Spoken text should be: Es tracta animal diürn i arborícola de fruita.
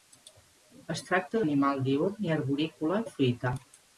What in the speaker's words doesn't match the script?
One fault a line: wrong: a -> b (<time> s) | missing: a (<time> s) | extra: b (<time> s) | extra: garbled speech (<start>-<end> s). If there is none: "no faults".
no faults